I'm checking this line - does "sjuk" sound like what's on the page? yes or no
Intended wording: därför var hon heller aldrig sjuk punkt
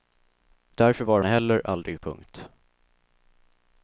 no